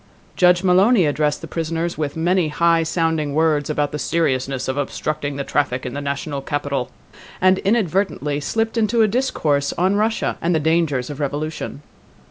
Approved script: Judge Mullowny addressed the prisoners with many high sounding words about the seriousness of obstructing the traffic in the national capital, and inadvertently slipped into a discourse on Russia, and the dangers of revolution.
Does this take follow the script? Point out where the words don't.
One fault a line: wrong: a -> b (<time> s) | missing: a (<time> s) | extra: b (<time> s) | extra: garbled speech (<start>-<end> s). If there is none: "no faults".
no faults